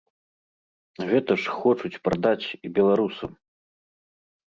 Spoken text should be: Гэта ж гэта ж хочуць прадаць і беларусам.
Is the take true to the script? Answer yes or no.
no